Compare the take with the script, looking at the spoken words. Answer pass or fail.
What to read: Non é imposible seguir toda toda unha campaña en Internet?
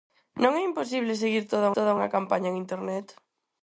pass